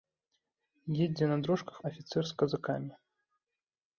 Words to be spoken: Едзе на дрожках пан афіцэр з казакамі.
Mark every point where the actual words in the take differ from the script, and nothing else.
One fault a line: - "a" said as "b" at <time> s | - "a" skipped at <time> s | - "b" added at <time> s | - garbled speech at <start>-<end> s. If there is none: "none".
- "пан" skipped at 1.8 s